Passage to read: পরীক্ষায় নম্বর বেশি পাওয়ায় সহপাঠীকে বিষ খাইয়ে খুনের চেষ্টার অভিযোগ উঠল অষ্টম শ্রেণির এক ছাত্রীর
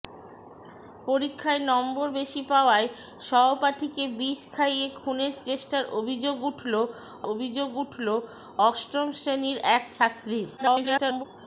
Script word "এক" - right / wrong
right